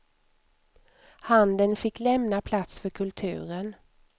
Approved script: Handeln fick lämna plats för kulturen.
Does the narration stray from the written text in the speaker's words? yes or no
no